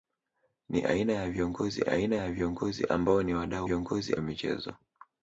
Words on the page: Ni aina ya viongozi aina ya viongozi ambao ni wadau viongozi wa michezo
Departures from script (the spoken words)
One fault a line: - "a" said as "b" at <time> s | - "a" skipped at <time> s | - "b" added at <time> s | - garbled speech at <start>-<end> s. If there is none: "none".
none